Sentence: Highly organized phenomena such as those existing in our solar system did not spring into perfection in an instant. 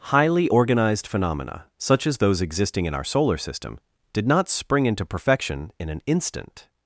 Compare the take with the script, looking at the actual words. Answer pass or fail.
pass